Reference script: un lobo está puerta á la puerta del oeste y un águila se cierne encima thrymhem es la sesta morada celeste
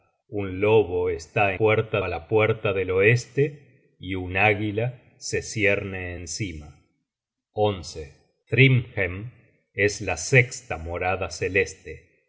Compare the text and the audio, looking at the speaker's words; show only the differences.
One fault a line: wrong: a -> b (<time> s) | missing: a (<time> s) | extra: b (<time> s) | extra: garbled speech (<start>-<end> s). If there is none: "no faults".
no faults